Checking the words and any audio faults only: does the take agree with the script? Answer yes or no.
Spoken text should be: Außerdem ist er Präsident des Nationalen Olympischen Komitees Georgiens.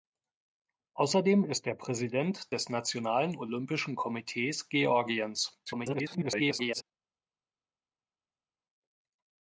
no